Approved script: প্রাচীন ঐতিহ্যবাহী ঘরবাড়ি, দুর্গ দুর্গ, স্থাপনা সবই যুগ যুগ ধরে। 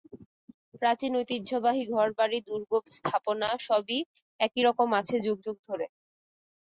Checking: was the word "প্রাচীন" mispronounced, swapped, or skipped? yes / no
no